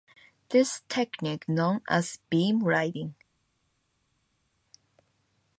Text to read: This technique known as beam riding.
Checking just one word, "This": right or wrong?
right